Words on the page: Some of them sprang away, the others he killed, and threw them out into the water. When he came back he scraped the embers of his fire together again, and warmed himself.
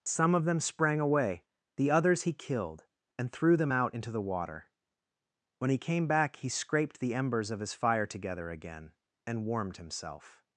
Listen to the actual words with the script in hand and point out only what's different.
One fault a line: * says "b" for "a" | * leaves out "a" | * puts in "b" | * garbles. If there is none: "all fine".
all fine